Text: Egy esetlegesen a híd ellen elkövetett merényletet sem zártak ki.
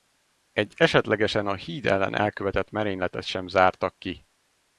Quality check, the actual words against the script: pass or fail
pass